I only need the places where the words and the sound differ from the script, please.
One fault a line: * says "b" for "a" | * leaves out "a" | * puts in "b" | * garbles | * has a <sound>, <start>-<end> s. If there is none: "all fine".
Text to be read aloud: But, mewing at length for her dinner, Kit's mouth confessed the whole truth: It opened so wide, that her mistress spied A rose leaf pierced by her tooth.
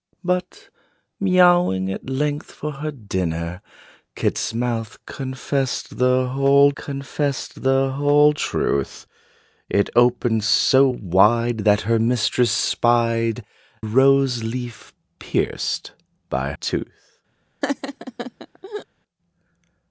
* puts in "confessed the whole"
* leaves out "A"
* leaves out "her"
* has a laugh, 17.6-18.9 s